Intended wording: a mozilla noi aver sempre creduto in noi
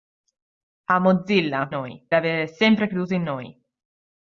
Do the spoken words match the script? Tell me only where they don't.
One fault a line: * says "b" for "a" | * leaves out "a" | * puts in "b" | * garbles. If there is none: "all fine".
all fine